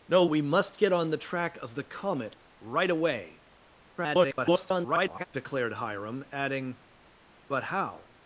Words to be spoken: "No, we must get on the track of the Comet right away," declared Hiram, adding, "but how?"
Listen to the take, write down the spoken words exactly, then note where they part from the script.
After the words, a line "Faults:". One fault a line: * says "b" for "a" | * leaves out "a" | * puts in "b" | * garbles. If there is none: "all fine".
"No, we must get on the track of the Comet right away," [garbled] declared Hiram, adding, "but how?"
Faults:
* garbles